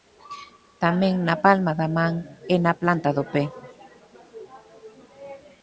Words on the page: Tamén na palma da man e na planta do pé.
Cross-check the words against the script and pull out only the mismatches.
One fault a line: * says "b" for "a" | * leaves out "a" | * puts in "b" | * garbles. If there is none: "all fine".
all fine